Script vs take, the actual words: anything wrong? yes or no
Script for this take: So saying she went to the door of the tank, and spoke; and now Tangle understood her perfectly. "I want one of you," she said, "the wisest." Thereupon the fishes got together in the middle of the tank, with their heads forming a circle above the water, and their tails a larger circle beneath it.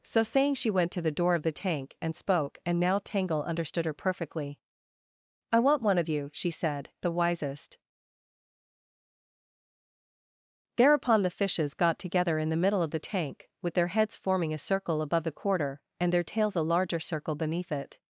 yes